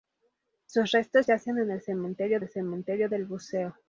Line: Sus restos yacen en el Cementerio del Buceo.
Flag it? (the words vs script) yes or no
yes